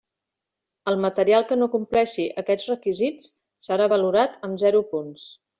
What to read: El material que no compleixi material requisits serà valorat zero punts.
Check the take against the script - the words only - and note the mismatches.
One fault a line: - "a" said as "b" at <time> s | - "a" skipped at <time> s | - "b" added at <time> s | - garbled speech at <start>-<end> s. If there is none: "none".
- "material" said as "aquests" at 2.4 s
- "amb" added at 4.5 s